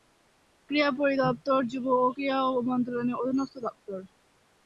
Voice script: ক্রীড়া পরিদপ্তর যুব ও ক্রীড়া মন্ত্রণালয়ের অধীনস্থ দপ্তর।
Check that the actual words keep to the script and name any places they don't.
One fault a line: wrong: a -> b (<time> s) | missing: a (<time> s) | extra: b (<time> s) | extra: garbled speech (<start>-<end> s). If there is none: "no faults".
no faults